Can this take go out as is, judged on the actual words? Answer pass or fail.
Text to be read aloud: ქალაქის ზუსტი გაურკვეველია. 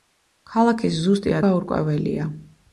pass